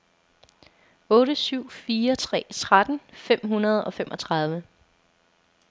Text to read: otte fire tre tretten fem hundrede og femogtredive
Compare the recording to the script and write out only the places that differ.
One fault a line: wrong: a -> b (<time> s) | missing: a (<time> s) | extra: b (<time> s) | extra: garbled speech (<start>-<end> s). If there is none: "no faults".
extra: syv (1.4 s)